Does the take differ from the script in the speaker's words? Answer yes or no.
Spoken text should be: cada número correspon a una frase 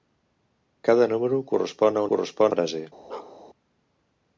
yes